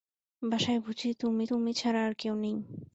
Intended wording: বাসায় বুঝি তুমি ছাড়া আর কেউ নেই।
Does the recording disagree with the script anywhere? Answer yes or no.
yes